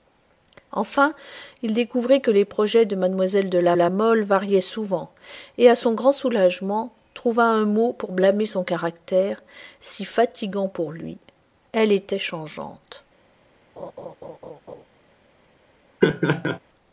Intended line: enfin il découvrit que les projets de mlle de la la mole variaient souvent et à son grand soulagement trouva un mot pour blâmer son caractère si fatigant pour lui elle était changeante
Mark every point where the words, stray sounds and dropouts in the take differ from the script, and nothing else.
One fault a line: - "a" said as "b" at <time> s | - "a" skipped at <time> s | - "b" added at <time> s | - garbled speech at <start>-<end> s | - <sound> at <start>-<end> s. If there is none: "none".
- laugh at 13.8-14.8 s
- laugh at 16.0-16.6 s